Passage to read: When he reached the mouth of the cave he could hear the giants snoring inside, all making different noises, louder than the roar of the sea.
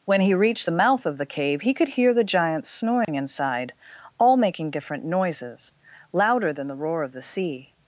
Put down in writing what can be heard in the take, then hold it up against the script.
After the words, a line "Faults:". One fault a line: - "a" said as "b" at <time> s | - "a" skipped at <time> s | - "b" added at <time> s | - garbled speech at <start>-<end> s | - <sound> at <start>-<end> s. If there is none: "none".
When he reached the mouth of the cave he could hear the giants snoring inside, all making different noises, louder than the roar of the sea.
Faults:
- dropout at 3.0-3.1 s